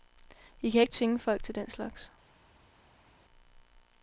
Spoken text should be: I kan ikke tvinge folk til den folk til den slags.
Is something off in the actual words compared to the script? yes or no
yes